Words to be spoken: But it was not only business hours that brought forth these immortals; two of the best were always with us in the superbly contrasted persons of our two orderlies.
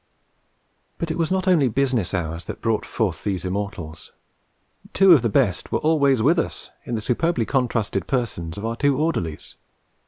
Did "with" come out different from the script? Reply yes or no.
no